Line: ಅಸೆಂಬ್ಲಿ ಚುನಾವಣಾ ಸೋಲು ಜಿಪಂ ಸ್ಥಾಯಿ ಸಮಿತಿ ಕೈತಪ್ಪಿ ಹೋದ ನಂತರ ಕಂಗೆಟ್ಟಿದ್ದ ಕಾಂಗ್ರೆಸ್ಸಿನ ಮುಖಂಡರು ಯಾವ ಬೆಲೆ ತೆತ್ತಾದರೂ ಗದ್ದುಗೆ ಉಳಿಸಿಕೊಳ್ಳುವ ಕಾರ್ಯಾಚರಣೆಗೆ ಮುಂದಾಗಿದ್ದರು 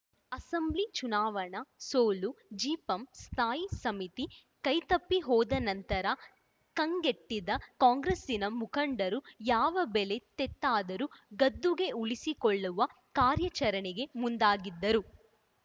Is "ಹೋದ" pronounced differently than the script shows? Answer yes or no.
no